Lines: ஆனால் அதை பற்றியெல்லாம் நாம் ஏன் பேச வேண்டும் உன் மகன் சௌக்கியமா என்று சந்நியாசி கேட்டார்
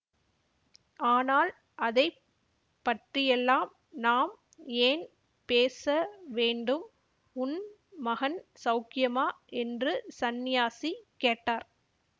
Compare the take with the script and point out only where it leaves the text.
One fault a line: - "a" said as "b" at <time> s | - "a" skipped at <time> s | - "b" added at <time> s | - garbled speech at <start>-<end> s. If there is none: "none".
none